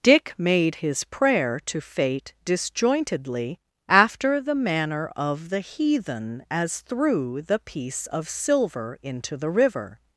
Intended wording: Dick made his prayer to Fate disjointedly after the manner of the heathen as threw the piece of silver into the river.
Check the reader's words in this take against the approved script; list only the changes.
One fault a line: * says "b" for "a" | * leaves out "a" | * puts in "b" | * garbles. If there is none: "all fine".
all fine